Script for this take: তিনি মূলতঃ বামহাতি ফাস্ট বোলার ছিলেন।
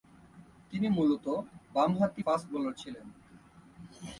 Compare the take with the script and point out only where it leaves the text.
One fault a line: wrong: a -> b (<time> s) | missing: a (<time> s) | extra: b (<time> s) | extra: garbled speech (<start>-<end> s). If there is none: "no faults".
no faults